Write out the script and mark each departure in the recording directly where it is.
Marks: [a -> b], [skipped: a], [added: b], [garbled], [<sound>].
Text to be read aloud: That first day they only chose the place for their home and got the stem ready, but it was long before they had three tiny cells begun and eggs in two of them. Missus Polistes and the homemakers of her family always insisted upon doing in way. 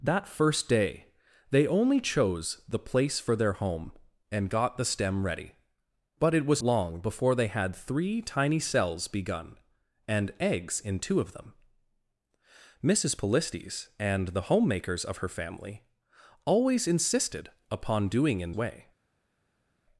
That first day they only chose the place for their home and got the stem ready, but it was long before they had three tiny cells begun and eggs in two of them. Missus Polistes and the homemakers of her family always insisted upon doing in way.